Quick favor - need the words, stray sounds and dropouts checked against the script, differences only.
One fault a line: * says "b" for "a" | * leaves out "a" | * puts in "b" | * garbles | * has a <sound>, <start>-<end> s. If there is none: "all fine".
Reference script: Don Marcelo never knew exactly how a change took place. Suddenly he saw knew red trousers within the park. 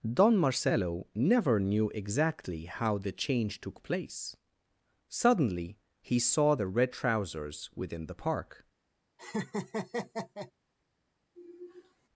* says "the" for "a"
* says "the" for "knew"
* has a laugh, 9.2-10.5 s
* has a sigh, 11.3-12.1 s